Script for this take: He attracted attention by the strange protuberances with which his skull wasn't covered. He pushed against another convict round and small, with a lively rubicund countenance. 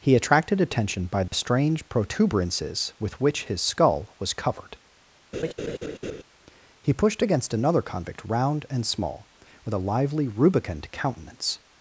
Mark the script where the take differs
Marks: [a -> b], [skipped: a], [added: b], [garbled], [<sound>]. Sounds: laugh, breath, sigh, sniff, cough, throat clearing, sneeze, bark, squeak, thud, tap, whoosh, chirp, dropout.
He attracted attention by the [dropout] strange protuberances with which his skull [wasn't -> was] covered. [laugh] He pushed against another convict round and small, with a lively rubicund countenance.